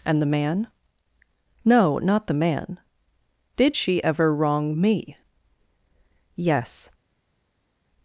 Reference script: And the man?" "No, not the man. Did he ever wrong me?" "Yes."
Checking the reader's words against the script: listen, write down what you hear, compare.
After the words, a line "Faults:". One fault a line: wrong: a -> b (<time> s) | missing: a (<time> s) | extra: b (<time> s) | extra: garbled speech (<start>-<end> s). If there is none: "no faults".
And the man?" "No, not the man. Did she ever wrong me?" "Yes."
Faults:
wrong: he -> she (3.7 s)